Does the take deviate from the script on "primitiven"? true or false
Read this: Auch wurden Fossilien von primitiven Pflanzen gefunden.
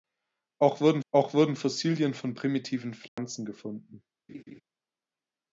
false